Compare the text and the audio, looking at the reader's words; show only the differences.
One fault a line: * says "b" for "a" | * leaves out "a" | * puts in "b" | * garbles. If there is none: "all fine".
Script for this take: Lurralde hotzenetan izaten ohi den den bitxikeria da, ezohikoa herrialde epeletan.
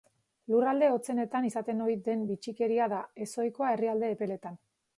* leaves out "den"